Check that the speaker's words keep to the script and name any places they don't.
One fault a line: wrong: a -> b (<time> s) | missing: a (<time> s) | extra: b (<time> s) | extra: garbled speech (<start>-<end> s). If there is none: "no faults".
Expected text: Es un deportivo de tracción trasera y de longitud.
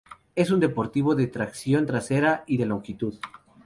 no faults